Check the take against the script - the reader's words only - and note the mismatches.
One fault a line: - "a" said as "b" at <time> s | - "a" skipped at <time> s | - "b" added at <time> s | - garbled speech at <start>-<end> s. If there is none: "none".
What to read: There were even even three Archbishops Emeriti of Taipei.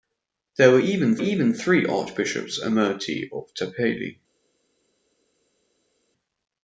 none